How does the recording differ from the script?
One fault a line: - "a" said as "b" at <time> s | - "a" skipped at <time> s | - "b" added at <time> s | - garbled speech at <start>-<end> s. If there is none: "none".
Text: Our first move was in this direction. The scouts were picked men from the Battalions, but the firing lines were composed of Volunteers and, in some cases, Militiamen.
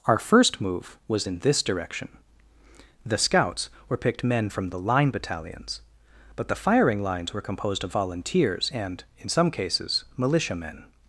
- "Line" added at 4.8 s